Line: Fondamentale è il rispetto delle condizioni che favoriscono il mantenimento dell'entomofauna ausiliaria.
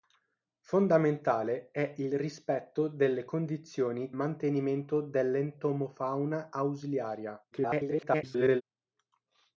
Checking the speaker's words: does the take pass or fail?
fail